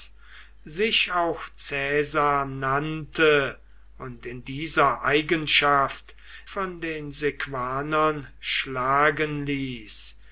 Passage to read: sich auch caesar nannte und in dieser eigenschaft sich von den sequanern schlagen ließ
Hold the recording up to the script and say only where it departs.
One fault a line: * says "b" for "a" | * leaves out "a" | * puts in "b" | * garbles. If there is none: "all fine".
* leaves out "sich"